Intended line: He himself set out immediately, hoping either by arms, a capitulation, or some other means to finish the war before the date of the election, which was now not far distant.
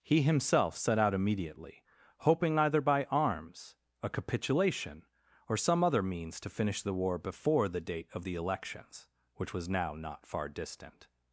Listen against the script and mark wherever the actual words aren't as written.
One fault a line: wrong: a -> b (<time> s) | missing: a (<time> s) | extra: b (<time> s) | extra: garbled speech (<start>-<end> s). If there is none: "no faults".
wrong: election -> elections (8.3 s)